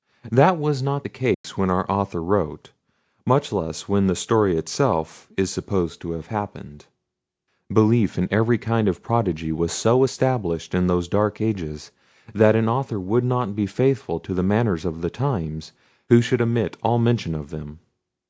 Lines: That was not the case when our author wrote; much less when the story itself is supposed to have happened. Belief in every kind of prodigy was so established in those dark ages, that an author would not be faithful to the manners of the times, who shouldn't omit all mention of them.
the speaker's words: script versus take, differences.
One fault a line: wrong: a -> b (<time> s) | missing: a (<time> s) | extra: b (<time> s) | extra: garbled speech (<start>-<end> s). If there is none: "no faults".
wrong: shouldn't -> should (16.2 s)